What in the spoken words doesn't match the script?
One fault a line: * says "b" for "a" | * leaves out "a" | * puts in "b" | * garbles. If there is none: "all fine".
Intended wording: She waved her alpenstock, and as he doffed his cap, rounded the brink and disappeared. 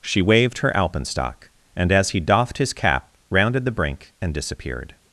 all fine